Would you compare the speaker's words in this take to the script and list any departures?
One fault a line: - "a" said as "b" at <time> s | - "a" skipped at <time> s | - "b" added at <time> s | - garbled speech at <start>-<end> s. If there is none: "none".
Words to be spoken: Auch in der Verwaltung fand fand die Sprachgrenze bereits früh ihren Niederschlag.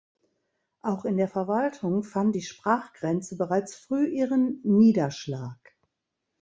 - "fand" skipped at 2.4 s